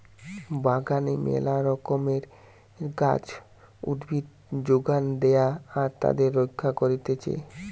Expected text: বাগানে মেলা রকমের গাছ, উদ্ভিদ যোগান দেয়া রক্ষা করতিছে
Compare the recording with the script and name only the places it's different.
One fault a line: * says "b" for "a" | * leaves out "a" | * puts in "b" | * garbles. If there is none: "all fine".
* puts in "আর তাদের"